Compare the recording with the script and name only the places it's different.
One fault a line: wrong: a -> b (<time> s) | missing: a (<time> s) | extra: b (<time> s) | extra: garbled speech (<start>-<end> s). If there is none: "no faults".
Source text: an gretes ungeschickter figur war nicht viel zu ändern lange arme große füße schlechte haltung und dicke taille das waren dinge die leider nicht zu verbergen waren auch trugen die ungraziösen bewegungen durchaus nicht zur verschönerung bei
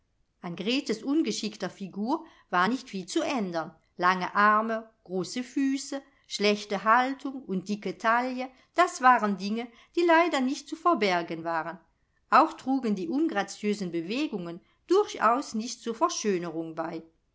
no faults